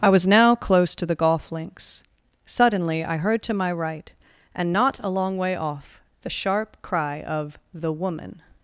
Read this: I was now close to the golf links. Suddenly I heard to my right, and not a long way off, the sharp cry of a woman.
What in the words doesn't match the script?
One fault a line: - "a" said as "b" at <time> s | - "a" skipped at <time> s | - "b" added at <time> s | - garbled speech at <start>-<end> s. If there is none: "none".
- "a" said as "the" at 7.7 s